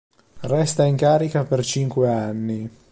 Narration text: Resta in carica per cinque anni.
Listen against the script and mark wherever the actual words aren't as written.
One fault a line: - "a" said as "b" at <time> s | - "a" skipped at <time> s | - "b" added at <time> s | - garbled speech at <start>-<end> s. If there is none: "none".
none